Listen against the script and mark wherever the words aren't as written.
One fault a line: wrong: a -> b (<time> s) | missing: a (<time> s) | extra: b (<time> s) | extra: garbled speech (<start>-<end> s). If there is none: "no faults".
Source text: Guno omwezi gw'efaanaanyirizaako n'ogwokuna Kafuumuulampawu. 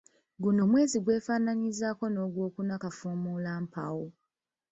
no faults